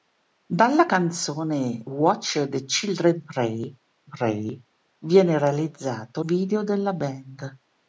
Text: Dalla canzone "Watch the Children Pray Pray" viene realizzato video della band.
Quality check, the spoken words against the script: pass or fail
pass